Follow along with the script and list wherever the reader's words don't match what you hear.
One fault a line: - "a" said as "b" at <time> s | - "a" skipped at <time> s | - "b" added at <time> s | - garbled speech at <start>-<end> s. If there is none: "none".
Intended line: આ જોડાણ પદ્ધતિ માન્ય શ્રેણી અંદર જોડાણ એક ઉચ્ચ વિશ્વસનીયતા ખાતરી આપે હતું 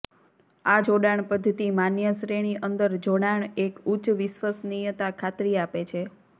- "હતું" said as "છે" at 5.9 s